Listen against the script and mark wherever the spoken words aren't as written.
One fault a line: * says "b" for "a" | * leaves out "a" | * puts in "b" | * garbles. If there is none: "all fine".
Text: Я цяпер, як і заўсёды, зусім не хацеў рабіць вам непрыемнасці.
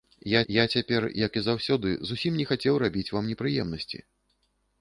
* puts in "я"